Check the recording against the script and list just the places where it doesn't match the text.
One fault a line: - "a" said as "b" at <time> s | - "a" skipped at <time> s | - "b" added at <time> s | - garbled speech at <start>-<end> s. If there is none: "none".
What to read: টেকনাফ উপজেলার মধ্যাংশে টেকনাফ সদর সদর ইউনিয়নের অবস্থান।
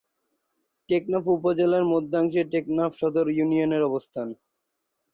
- "সদর" skipped at 3.2 s